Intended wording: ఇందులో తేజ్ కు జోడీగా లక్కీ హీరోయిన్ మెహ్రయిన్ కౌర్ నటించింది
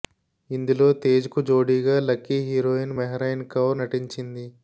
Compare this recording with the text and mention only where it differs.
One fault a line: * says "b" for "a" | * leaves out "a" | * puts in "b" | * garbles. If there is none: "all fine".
all fine